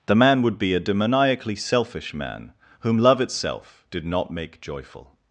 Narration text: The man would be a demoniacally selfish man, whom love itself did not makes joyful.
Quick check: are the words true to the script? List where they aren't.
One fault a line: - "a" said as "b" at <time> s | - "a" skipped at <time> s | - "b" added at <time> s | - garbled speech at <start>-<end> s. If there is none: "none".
- "makes" said as "make" at 4.3 s